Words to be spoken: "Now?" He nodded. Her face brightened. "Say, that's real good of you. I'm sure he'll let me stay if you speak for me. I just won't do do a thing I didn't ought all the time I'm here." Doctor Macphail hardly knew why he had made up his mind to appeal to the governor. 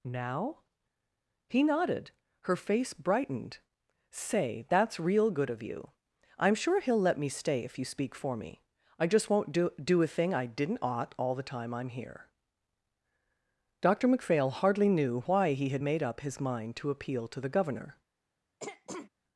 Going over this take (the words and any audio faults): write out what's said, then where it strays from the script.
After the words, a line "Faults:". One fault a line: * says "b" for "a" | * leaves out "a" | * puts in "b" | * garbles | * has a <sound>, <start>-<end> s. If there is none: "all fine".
"Now?" He nodded. Her face brightened. "Say, that's real good of you. I'm sure he'll let me stay if you speak for me. I just won't do do a thing I didn't ought all the time I'm here." Doctor Macphail hardly knew why he had made up his mind to appeal to the governor.
Faults:
* has a throat clearing, 18.6-19.1 s